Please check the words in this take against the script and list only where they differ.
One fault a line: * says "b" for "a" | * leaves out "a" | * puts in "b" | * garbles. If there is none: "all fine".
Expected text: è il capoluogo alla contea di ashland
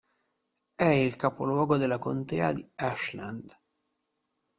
* says "della" for "alla"